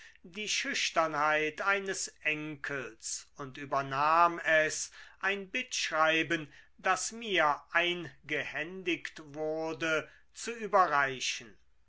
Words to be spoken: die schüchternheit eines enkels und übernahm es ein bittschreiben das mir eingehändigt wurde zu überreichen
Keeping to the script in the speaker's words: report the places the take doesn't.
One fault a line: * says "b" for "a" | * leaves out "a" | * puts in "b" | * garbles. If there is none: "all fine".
all fine